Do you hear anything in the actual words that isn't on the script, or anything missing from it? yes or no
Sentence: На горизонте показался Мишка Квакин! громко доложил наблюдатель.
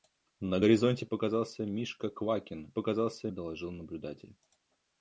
yes